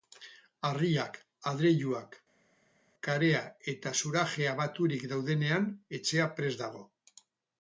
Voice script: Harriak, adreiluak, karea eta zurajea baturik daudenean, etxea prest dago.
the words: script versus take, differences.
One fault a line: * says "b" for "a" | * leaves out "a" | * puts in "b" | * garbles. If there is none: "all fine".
all fine